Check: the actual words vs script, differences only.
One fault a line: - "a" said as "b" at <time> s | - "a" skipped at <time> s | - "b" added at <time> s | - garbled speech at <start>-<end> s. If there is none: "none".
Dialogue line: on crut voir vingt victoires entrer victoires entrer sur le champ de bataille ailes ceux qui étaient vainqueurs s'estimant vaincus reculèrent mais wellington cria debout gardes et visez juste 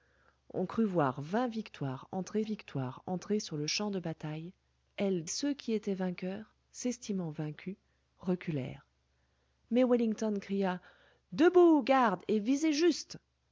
none